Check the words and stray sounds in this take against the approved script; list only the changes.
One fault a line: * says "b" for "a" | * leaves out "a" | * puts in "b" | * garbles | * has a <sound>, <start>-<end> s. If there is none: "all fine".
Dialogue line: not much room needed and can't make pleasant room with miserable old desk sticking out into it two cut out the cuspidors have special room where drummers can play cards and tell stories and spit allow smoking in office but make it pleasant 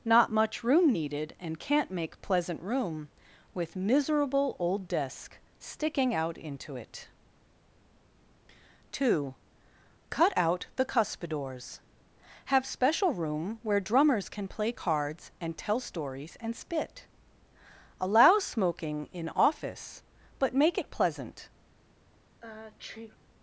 * has a sneeze, 22.4-23.2 s